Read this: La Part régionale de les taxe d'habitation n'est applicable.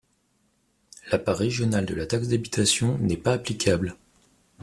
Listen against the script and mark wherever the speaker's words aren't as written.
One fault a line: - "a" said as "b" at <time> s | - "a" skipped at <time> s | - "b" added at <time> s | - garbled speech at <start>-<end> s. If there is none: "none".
- "les" said as "la" at 1.9 s
- "pas" added at 3.2 s